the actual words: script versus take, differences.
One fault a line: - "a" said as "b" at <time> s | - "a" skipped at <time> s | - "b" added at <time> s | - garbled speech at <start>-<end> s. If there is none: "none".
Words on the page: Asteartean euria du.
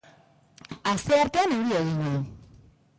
- "egingo" added at 1.8 s